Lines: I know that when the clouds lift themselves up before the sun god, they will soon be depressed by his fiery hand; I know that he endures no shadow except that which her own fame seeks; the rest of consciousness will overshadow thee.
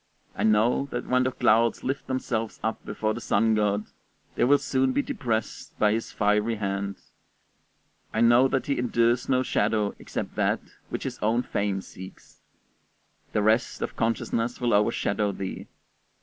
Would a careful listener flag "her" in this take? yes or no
yes